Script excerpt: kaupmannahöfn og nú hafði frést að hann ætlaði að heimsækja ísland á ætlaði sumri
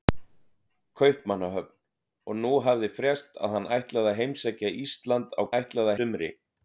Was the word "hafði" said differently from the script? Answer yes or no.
no